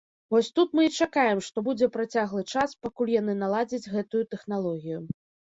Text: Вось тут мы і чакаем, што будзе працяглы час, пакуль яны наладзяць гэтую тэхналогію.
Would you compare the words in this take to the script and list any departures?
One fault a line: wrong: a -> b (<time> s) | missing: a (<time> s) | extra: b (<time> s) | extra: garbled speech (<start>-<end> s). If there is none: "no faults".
no faults